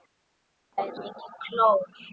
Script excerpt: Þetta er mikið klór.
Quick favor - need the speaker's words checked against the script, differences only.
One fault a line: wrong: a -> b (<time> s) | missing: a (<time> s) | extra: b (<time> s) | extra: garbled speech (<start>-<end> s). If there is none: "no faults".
no faults